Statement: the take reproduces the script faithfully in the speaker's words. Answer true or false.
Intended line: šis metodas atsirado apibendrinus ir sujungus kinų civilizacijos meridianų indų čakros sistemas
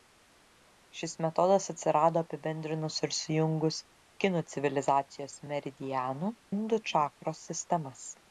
true